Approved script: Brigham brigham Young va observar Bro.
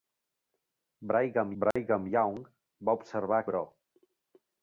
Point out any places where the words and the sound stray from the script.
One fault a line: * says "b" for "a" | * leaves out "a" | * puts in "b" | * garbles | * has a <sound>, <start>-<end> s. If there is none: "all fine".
* has a dropout, 1.7-1.8 s